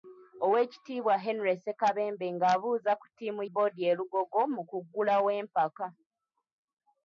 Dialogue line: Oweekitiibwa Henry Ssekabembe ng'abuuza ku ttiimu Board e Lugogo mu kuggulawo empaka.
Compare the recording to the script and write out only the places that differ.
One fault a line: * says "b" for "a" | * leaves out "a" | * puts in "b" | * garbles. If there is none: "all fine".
all fine